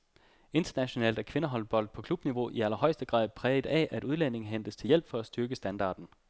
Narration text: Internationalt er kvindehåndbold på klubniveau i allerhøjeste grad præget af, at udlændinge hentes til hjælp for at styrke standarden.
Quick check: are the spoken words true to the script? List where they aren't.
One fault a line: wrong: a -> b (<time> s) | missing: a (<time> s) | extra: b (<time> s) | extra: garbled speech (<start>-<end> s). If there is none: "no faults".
no faults